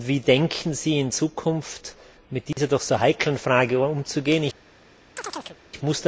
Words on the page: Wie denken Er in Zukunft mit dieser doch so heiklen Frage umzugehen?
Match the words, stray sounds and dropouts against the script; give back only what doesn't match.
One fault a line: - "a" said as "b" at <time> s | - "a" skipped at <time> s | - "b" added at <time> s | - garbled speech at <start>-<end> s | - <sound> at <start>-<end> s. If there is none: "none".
- "Er" said as "Sie" at 0.7 s
- dropout at 2.5-2.6 s
- chirp at 5.2-5.6 s